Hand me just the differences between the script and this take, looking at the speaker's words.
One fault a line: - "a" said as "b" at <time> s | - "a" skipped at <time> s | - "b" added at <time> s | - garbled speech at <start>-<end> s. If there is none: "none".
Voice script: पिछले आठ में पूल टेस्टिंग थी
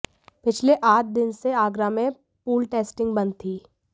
- "दिन से आगरा" added at 1.2 s
- "बंद" added at 3.1 s